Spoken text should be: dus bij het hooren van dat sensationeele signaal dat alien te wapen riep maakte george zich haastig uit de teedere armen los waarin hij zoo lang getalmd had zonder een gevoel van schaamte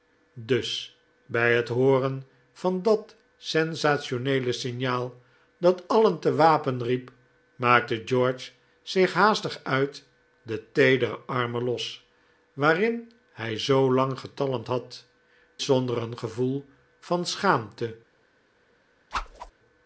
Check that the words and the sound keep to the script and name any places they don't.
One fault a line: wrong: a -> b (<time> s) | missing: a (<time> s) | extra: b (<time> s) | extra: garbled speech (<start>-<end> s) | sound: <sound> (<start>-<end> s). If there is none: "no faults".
sound: whoosh (19.1-19.5 s)